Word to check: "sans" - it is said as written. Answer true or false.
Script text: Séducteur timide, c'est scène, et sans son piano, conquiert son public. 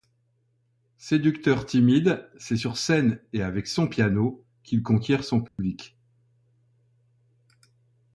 false